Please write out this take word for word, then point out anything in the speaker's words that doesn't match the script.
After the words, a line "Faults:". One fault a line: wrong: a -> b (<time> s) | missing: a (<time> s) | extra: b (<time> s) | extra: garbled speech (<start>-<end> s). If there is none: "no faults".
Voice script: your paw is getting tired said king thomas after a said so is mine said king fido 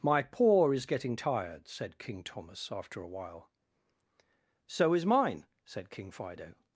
my paw is getting tired said king thomas after a while so is mine said king fido
Faults:
wrong: your -> my (0.0 s)
wrong: said -> while (3.1 s)